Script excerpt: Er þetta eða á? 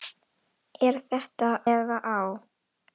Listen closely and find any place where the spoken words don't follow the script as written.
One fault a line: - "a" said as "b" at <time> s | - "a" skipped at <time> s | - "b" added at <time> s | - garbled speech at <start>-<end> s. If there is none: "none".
none